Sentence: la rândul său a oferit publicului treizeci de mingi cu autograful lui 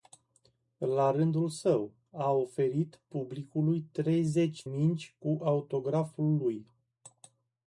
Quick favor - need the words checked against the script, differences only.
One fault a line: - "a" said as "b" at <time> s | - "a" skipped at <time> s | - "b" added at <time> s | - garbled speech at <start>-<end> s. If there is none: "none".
- "de" skipped at 4.7 s